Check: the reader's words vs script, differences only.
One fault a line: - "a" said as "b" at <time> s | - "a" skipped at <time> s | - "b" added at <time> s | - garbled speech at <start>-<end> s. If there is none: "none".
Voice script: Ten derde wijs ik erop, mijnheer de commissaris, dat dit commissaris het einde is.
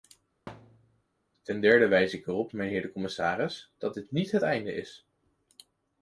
- "commissaris" said as "niet" at 4.1 s